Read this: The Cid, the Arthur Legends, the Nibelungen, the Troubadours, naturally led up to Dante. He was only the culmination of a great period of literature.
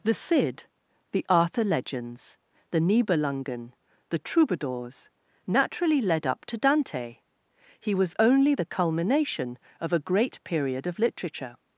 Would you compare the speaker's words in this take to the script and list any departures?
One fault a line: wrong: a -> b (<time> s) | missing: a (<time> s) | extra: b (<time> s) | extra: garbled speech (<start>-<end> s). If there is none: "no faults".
no faults